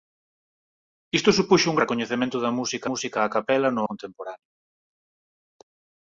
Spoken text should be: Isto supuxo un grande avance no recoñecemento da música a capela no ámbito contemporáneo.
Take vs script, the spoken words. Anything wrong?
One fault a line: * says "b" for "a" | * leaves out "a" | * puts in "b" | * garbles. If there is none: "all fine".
* leaves out "grande avance no"
* puts in "música"
* leaves out "ámbito"